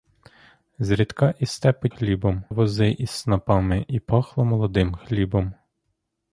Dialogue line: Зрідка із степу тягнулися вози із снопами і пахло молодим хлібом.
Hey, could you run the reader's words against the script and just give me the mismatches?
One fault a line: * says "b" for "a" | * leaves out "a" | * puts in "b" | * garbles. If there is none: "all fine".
* says "хлібом" for "тягнулися"